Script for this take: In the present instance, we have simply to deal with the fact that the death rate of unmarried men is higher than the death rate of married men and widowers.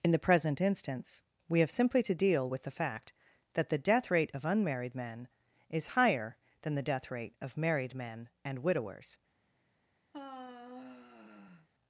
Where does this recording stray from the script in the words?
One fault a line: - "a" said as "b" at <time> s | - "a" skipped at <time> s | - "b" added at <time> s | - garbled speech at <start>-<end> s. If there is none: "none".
none